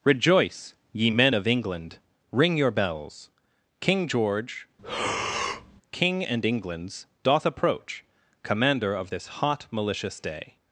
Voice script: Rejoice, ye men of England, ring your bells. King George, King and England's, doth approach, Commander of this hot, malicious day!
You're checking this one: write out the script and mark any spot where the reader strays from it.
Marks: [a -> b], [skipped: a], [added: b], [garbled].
Rejoice, ye men of England, ring your bells. King George, King and England's, doth approach, Commander of this hot, malicious day!